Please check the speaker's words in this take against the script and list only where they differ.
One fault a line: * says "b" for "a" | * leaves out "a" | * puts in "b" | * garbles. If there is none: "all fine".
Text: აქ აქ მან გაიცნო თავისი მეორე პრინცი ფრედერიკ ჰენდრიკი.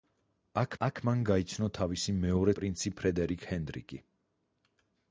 all fine